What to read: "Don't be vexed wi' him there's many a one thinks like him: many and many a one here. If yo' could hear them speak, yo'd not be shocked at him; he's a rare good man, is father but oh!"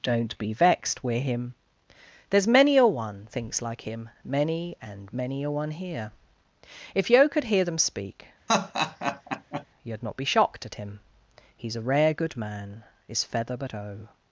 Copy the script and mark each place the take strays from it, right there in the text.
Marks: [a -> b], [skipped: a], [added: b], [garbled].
"Don't be vexed wi' him there's many a one thinks like him: many and many a one here. If yo' could hear them speak, yo'd not be shocked at him; he's a rare good man, is [father -> feather] but oh!"